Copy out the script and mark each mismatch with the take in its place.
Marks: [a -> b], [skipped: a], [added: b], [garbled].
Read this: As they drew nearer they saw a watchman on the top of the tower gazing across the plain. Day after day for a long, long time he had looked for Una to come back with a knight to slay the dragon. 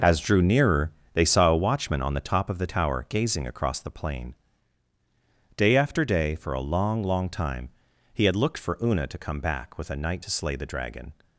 As [skipped: they] drew nearer they saw a watchman on the top of the tower gazing across the plain. Day after day for a long, long time he had looked for Una to come back with a knight to slay the dragon.